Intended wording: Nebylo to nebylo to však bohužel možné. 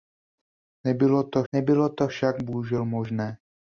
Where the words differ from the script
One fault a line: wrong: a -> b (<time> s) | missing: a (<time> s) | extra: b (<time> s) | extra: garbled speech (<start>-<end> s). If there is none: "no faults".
no faults